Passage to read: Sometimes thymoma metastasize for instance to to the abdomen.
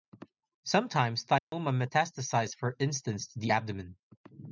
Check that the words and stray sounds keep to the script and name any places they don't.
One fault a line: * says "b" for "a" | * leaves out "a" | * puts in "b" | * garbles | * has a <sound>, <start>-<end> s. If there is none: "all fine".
* has a dropout, 1.4-1.5 s
* leaves out "to"